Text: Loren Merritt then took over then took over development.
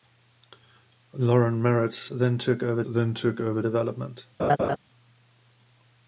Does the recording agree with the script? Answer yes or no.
yes